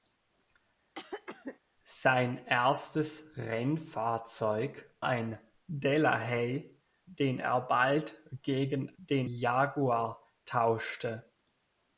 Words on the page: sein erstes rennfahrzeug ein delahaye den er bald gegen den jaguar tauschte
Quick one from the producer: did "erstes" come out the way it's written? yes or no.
yes